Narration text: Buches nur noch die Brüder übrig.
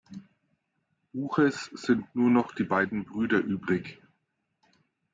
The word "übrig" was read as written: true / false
true